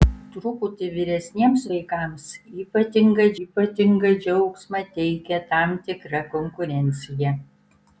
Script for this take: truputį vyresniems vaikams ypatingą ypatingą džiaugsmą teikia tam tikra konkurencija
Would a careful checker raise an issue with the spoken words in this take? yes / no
no